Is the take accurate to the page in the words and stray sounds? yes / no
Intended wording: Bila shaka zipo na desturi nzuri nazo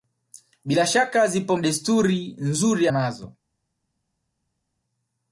yes